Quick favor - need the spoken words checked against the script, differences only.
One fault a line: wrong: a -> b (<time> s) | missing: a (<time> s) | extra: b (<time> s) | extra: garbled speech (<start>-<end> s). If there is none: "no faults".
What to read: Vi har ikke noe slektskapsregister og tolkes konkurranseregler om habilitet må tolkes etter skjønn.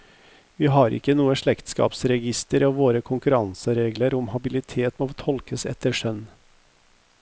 wrong: tolkes -> våre (2.8 s)